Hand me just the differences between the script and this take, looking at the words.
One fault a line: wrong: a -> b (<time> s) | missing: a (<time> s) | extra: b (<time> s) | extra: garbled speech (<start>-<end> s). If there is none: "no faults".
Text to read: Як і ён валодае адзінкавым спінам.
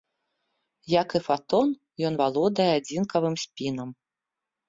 extra: фатон (1.3 s)